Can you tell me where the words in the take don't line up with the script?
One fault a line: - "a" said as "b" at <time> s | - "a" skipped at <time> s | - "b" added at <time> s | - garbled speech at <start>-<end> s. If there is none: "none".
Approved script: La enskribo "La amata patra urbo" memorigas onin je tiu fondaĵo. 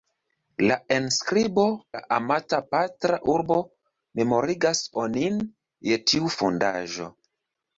none